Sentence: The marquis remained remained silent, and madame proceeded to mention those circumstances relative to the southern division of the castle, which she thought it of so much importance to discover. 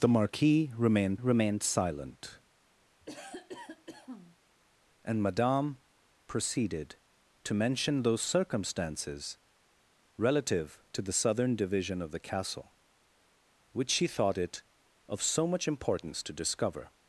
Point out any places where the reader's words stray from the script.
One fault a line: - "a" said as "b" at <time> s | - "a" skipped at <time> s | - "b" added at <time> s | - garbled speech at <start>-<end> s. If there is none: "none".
none